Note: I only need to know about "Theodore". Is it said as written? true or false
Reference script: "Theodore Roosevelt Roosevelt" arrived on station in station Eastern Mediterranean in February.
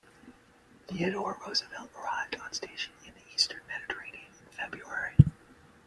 true